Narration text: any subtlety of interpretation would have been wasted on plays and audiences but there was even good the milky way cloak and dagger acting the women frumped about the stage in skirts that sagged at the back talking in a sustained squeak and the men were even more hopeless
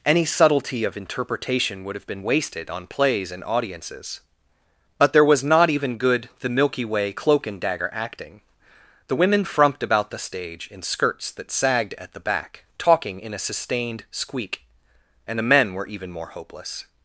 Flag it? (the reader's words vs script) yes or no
yes